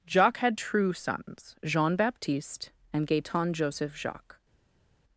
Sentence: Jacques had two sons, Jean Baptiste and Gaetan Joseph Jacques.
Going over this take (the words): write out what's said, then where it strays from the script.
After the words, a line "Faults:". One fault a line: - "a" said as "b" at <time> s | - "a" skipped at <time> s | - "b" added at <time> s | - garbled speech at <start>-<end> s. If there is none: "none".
Jacques had true sons, Jean Baptiste and Gaetan Joseph Jacques.
Faults:
- "two" said as "true" at 0.6 s